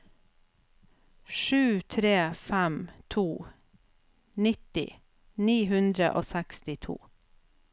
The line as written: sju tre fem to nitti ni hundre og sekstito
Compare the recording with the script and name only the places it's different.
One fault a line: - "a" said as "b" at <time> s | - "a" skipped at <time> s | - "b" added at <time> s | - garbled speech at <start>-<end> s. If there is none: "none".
none